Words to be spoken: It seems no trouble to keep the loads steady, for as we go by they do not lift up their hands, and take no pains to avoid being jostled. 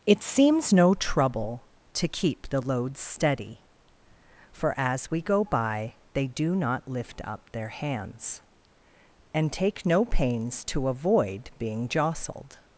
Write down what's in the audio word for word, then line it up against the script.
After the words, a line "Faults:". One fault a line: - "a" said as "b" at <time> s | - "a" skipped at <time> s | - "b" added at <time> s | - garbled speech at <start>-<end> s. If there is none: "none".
It seems no trouble to keep the loads steady, for as we go by they do not lift up their hands, and take no pains to avoid being jostled.
Faults:
none